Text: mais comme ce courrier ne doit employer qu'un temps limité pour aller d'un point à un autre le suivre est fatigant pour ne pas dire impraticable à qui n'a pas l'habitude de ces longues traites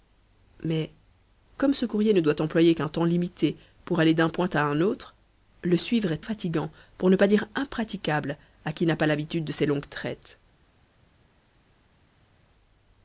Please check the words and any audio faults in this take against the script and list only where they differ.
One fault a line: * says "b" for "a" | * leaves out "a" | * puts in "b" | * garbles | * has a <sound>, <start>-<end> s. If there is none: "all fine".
all fine